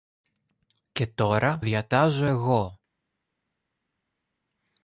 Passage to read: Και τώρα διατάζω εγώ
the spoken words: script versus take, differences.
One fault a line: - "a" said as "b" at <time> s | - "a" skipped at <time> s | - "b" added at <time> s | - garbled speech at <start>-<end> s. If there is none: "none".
none